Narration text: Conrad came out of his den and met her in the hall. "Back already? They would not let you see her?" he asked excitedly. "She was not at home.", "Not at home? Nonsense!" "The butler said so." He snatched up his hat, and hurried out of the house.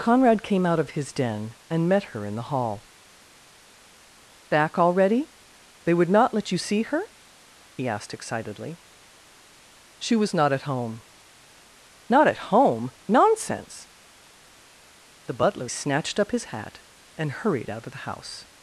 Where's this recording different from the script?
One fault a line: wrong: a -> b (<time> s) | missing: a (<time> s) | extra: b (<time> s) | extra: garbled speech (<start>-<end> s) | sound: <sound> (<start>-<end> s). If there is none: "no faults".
missing: said so He (15.7 s)